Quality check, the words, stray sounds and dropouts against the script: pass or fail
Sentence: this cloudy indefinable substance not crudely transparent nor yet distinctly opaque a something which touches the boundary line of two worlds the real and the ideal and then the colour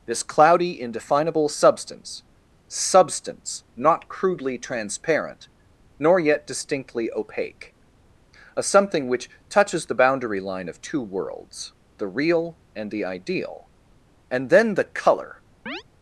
fail